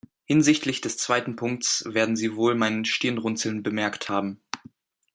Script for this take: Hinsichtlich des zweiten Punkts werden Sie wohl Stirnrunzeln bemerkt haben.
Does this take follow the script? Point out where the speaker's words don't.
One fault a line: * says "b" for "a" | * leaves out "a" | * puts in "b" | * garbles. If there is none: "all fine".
* puts in "mein"